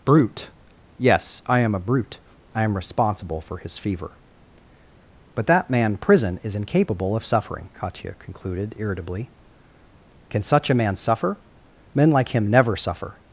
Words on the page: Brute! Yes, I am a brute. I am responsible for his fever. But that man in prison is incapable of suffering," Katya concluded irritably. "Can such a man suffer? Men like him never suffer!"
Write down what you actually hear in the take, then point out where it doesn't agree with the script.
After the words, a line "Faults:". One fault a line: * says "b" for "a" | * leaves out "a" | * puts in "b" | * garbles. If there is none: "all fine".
Brute! Yes, I am a brute. I am responsible for his fever. But that man prison is incapable of suffering," Katya concluded irritably. "Can such a man suffer? Men like him never suffer!"
Faults:
* leaves out "in"